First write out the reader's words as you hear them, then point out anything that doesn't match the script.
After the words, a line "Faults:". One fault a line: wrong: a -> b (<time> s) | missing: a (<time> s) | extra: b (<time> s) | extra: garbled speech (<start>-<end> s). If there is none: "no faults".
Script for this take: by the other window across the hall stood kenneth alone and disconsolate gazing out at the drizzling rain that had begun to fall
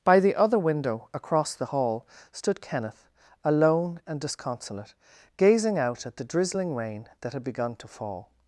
by the other window across the hall stood kenneth alone and disconsolate gazing out at the drizzling rain that had begun to fall
Faults:
no faults